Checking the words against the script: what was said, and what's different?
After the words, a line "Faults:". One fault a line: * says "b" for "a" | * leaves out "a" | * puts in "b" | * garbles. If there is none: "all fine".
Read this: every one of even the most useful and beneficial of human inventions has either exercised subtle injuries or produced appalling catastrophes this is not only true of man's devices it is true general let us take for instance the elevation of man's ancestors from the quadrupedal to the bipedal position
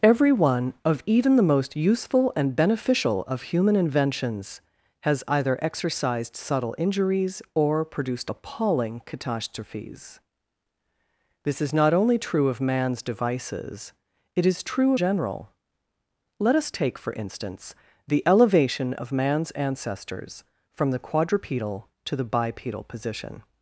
every one of even the most useful and beneficial of human inventions has either exercised subtle injuries or produced appalling catastrophes this is not only true of man's devices it is true general let us take for instance the elevation of man's ancestors from the quadrupedal to the bipedal position
Faults:
all fine